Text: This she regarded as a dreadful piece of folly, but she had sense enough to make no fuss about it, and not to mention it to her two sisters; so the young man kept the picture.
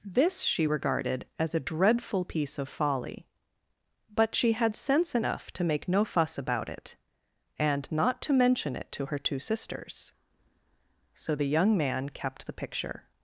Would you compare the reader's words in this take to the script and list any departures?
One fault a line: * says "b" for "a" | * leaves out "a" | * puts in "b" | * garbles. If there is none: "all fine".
all fine